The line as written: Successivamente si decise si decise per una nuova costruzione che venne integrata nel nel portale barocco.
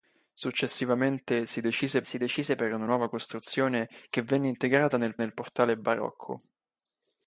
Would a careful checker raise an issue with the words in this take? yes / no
no